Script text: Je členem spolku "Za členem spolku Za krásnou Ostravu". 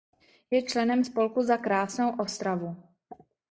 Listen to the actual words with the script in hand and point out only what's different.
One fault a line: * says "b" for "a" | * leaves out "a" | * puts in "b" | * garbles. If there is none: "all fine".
* leaves out "členem spolku Za"